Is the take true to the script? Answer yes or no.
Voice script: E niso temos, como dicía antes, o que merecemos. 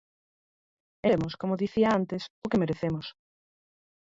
no